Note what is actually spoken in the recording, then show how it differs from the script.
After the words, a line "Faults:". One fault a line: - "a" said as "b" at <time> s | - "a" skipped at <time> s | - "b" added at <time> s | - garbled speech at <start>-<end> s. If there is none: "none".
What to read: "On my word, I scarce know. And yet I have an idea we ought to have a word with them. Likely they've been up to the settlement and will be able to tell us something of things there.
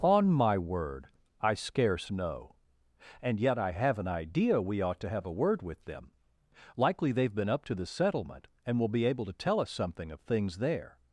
"On my word, I scarce know. And yet I have an idea we ought to have a word with them. Likely they've been up to the settlement and will be able to tell us something of things there.
Faults:
none